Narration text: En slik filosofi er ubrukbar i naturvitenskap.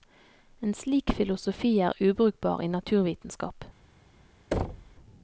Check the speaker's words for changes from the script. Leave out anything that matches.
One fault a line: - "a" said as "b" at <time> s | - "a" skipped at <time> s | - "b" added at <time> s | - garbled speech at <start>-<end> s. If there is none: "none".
none